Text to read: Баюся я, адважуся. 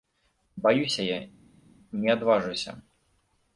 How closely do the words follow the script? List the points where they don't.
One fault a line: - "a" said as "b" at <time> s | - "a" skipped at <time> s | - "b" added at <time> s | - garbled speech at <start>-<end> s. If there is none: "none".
- "не" added at 1.9 s